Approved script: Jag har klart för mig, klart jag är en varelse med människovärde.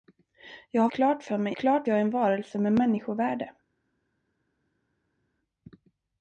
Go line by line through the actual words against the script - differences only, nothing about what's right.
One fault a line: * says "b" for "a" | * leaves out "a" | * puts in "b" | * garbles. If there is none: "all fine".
all fine